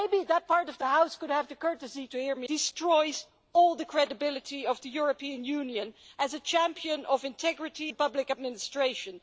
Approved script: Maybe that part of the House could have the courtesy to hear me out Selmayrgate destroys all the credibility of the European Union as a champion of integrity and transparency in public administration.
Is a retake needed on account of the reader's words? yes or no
yes